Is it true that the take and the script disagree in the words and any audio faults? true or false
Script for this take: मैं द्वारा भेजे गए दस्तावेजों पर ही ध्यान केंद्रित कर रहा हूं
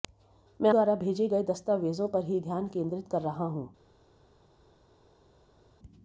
false